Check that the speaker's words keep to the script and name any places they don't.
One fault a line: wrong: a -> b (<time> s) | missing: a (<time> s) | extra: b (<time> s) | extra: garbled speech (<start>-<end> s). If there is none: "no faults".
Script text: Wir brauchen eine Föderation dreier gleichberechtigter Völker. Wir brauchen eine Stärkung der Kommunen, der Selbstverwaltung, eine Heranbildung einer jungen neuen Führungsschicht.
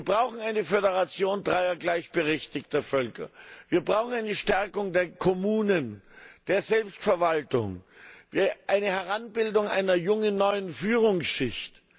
no faults